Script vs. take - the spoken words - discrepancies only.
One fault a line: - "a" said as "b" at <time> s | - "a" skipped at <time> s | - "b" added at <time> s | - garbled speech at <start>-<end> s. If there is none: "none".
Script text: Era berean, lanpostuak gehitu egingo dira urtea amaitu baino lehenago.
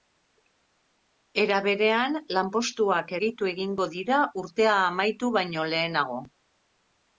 none